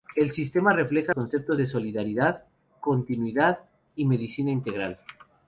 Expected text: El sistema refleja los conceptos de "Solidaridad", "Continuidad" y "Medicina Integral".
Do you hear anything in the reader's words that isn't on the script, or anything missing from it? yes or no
yes